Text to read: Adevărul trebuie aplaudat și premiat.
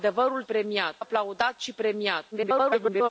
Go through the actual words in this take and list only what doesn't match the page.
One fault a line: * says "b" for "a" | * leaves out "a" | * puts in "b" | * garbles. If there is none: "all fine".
* says "premiat" for "trebuie"
* garbles